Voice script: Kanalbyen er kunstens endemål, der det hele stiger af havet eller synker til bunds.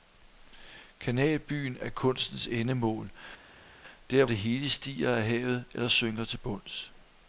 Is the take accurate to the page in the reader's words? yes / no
yes